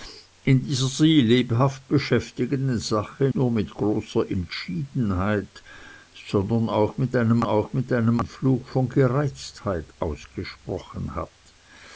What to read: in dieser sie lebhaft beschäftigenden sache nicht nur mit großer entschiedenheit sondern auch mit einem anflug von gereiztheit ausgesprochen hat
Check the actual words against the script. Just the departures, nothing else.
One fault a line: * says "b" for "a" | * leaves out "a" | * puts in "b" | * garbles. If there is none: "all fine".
* leaves out "nicht"
* puts in "auch mit einem"